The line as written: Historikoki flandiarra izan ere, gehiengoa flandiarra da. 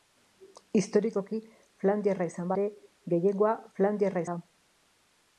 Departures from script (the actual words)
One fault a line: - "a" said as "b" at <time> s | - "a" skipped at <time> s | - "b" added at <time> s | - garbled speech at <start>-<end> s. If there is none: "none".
none